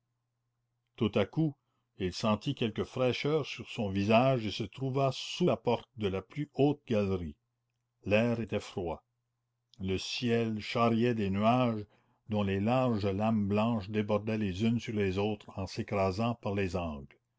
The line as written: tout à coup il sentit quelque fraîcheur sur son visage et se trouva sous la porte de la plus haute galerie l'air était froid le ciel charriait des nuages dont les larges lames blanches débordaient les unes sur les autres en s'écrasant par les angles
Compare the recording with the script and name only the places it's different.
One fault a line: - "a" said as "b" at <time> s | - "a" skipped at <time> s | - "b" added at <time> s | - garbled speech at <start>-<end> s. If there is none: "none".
none